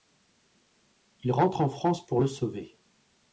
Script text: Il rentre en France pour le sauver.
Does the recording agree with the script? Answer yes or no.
yes